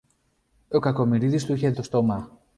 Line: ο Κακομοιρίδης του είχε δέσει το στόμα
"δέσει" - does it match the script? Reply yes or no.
no